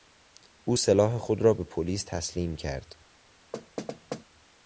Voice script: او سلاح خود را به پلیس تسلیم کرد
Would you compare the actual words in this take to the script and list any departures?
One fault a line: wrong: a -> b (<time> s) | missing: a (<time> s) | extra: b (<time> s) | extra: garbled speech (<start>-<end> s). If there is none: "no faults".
no faults